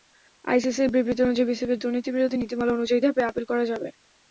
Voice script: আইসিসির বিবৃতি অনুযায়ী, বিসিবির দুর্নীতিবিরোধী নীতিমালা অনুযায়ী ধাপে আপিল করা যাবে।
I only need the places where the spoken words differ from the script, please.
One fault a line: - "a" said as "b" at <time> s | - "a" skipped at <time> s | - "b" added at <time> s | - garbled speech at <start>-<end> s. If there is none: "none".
none